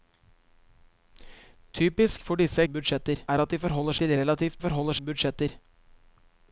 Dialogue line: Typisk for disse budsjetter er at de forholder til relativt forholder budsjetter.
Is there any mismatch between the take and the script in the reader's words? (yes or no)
no